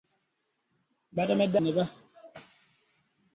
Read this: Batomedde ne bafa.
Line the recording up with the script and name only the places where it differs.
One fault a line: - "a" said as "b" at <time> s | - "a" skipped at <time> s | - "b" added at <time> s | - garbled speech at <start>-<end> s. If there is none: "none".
none